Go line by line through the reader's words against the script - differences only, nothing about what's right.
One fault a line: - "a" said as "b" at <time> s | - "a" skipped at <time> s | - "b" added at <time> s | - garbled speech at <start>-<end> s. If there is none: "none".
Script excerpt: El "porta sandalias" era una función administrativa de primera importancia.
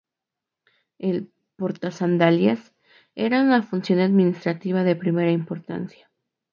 none